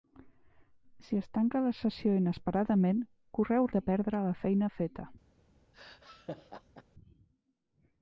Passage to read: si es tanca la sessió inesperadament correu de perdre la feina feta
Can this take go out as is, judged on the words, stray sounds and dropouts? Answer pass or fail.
fail